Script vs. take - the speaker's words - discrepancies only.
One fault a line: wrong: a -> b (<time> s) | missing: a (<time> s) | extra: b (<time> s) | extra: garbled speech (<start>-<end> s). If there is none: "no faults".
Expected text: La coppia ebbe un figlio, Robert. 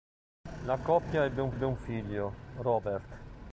extra: ebbe un (1.5 s)